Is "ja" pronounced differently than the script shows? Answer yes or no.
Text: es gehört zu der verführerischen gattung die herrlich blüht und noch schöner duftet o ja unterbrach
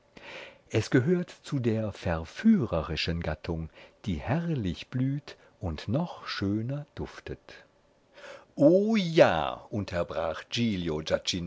no